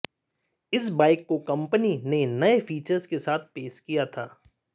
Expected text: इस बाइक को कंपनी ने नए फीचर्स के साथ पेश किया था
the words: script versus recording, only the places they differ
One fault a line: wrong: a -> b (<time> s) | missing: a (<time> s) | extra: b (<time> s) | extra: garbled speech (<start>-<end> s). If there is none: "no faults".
no faults